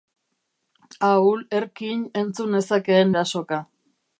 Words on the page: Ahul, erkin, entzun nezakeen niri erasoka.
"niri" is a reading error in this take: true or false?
true